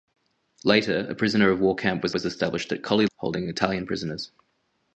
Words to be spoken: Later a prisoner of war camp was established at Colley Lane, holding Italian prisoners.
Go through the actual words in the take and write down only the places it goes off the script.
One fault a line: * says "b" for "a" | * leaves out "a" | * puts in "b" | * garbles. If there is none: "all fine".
* puts in "was"
* leaves out "Lane"